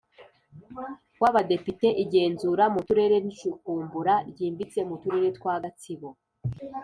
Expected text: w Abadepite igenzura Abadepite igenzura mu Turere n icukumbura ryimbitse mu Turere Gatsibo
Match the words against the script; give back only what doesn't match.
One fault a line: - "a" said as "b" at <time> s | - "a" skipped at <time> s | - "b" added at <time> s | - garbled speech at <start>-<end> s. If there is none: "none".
- "Abadepite igenzura" skipped at 2.6 s
- "twa" added at 5.4 s